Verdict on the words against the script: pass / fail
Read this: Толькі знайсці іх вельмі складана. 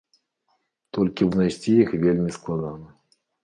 pass